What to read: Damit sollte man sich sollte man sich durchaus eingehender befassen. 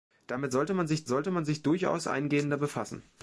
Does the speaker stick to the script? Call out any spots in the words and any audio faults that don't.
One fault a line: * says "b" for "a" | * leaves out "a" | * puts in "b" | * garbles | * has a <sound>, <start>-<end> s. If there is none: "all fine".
all fine